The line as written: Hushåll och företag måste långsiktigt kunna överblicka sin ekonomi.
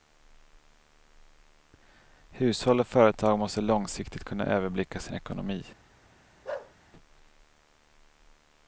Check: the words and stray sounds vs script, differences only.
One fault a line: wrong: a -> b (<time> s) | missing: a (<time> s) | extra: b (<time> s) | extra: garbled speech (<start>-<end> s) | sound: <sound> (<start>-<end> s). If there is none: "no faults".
sound: bark (6.4-6.7 s)